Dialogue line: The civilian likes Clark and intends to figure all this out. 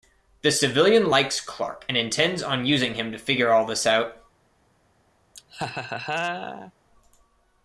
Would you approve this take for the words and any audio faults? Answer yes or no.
no